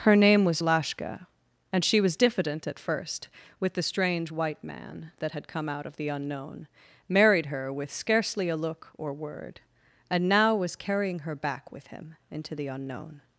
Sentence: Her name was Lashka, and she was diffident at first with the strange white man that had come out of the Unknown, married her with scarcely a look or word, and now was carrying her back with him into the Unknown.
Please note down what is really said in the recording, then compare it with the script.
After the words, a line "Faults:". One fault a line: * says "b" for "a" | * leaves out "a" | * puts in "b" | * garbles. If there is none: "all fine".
Her name was Lashka, and she was diffident at first with the strange white man that had come out of the Unknown, married her with scarcely a look or word, and now was carrying her back with him into the Unknown.
Faults:
all fine